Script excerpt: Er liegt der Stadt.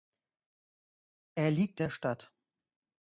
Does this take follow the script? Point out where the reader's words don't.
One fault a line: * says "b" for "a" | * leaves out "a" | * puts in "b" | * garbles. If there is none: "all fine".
all fine